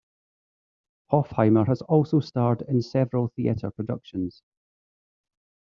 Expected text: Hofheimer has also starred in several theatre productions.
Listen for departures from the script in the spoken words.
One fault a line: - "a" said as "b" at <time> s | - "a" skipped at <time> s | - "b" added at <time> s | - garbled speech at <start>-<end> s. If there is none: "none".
none